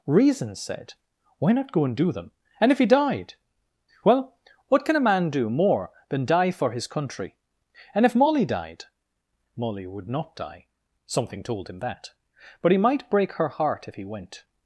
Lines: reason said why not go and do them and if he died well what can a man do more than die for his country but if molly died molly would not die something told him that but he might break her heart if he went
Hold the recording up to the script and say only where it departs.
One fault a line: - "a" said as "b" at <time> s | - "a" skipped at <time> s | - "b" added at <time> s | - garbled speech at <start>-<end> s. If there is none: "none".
- "but" said as "and" at 7.9 s